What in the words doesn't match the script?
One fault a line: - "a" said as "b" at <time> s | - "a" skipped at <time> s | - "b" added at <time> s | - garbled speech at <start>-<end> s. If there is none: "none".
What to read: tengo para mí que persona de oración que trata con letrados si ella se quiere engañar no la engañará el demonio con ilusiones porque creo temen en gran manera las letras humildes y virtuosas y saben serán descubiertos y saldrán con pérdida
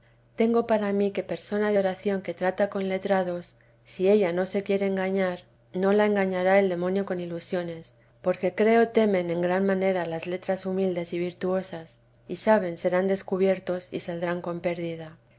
- "no" added at 4.3 s